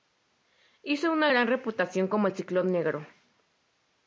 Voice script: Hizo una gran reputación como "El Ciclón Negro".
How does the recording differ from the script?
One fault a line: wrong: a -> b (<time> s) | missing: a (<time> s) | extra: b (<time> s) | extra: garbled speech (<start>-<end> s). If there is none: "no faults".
no faults